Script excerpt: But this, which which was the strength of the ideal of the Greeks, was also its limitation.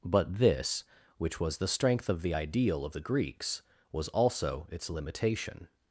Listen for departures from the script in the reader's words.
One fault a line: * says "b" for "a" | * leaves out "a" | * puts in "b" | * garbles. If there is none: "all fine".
* leaves out "which"